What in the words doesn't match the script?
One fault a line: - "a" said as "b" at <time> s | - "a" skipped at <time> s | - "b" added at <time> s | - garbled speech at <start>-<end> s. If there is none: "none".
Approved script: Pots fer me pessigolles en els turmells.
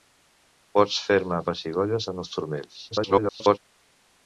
- garbled speech at 2.9-3.6 s